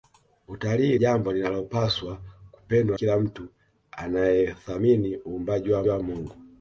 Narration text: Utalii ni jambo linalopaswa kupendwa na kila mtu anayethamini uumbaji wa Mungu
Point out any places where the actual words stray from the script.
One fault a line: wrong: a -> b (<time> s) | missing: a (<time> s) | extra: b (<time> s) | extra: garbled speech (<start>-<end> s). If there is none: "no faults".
missing: ni (1.0 s)
missing: na (3.0 s)
extra: wa (5.9 s)